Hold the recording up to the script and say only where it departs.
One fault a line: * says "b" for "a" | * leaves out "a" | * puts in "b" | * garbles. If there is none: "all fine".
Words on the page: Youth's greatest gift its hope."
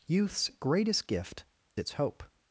all fine